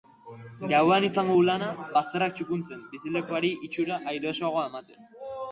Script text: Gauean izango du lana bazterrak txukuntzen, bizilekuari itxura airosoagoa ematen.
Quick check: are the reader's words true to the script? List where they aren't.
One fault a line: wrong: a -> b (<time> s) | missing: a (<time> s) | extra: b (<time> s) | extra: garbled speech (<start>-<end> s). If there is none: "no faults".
no faults